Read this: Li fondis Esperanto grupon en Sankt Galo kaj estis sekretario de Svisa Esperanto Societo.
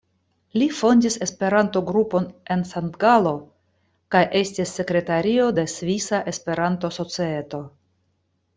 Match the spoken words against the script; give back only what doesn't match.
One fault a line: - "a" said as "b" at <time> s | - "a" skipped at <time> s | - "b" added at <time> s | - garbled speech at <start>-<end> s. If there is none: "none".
none